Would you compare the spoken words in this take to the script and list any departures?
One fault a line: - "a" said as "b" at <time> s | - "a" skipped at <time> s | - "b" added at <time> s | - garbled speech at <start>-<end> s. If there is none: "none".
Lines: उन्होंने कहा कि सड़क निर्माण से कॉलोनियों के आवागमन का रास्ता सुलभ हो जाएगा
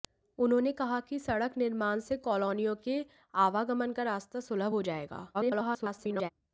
- garbled speech at 5.3-6.3 s